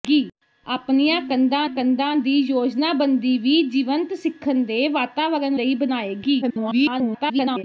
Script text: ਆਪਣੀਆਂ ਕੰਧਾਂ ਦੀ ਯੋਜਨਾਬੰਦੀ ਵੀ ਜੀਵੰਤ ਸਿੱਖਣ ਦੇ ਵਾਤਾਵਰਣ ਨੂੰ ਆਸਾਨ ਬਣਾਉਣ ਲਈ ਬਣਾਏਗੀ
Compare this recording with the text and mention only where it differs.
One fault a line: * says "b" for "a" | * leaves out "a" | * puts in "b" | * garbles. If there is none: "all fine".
* puts in "ਕੰਧਾਂ"
* leaves out "ਨੂੰ ਆਸਾਨ ਬਣਾਉਣ"
* garbles